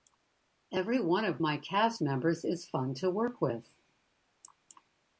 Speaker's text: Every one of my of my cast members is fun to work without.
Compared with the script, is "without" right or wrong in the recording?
wrong